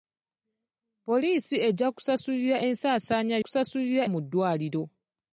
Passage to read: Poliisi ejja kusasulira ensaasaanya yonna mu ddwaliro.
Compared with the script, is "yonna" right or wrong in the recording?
wrong